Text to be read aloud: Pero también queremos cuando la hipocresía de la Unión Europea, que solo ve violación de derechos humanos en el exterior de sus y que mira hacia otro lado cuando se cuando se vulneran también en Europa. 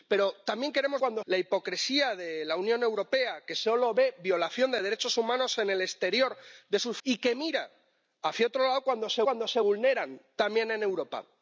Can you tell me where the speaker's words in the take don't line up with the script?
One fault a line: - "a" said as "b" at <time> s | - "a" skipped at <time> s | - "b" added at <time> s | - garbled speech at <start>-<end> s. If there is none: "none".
none